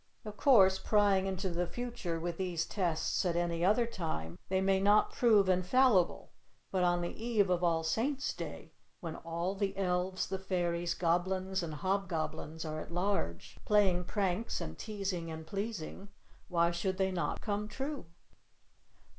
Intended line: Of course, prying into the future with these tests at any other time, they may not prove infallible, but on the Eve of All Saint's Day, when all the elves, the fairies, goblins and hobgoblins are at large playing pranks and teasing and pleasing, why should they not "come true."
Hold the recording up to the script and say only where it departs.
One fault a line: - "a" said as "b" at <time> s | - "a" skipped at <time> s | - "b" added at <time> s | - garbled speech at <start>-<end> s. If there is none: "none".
none